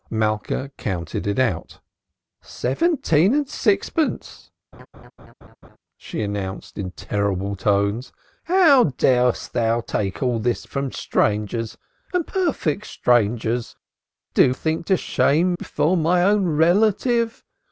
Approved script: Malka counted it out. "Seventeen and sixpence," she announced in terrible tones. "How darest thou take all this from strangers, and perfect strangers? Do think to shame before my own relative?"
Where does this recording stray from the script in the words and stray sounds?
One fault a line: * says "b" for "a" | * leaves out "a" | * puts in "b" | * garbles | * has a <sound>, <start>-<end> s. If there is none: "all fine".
* has a laugh, 4.7-5.8 s